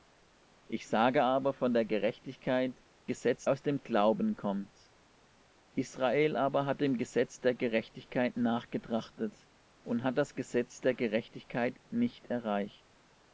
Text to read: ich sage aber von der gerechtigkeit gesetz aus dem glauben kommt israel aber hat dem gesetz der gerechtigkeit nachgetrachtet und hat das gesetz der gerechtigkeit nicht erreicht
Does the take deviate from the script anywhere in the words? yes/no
no